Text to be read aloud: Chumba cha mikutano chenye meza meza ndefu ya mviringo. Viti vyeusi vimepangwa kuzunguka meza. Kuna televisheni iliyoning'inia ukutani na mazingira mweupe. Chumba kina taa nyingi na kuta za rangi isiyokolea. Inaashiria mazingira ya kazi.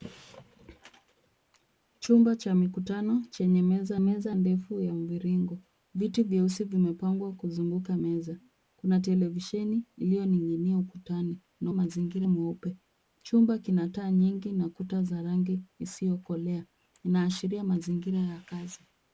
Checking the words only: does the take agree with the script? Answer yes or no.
yes